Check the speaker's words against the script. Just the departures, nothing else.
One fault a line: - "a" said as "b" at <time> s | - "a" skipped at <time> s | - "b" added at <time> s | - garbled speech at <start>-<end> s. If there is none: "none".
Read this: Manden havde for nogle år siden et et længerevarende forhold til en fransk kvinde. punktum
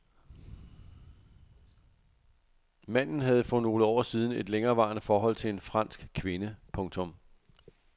- "et" skipped at 4.5 s